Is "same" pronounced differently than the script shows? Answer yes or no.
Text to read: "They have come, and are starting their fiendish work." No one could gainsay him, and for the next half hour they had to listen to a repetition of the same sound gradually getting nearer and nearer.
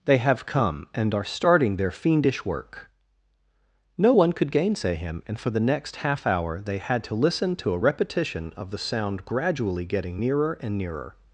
yes